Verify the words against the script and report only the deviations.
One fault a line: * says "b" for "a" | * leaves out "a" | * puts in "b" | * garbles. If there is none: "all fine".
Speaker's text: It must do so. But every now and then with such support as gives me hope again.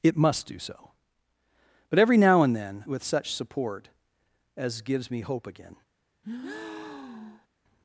all fine